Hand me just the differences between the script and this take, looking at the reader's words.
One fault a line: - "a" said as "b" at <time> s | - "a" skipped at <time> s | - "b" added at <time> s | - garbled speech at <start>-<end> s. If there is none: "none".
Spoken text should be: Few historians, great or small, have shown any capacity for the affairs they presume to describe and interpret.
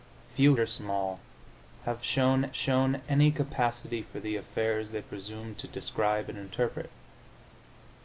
- "historians great" skipped at 0.6 s
- "shown" added at 2.5 s